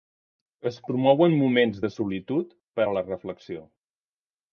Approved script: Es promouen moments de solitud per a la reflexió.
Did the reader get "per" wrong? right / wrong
right